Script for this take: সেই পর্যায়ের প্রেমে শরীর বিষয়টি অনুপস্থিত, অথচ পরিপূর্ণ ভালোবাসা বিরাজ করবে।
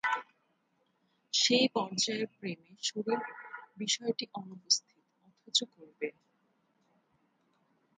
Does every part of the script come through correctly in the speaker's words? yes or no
no